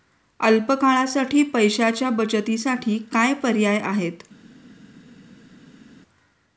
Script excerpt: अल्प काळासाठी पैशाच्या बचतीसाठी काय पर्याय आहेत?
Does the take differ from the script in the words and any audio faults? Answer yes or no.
no